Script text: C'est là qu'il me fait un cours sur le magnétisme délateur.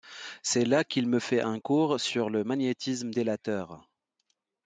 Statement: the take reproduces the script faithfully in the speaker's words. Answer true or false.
true